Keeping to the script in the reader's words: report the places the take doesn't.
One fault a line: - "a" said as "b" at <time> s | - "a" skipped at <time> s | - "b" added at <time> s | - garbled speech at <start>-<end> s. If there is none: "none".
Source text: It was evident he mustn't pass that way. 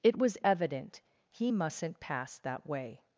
none